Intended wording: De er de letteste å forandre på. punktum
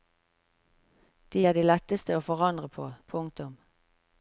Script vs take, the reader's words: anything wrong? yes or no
no